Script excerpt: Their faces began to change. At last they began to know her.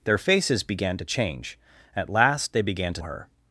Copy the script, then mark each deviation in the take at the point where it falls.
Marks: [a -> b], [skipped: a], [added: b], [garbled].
Their faces began to change. At last they began to [skipped: know] her.